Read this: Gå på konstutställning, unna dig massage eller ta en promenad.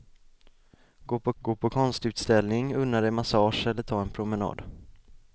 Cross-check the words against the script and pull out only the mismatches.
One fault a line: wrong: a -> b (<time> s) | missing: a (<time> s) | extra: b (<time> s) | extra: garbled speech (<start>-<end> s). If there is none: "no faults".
extra: gå på (1.4 s)